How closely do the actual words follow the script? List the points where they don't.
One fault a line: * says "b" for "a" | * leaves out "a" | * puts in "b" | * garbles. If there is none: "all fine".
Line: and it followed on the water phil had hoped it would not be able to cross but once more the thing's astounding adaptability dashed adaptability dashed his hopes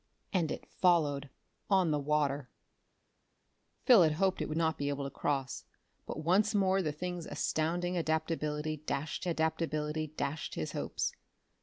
all fine